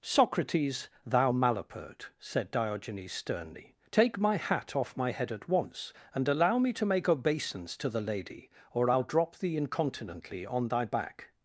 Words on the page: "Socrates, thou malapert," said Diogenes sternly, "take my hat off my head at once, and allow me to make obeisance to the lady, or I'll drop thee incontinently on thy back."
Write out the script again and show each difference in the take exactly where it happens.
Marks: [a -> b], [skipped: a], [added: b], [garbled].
"Socrates, thou malapert," said Diogenes sternly, "take my hat off my head at once, and allow me to make obeisance to the lady, or I'll drop thee incontinently on thy back."